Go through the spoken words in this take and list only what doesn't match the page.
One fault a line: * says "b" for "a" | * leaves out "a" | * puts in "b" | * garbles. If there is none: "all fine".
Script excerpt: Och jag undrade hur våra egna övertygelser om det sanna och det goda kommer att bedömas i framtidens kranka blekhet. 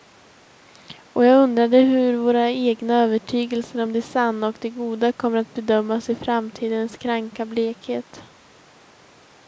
all fine